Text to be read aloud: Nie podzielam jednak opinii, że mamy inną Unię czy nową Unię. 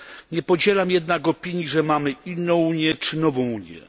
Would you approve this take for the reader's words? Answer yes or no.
yes